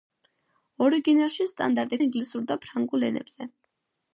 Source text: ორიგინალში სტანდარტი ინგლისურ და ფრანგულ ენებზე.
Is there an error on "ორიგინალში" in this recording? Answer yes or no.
no